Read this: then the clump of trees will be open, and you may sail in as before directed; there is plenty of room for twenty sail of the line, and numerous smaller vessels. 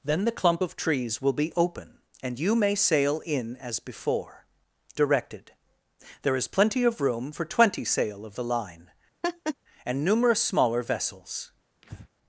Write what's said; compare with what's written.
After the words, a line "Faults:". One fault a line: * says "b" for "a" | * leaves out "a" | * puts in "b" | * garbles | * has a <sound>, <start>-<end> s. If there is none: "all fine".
then the clump of trees will be open, and you may sail in as before directed; there is plenty of room for twenty sail of the line, and numerous smaller vessels.
Faults:
* has a laugh, 9.2-9.5 s
* has a breath, 11.8-12.1 s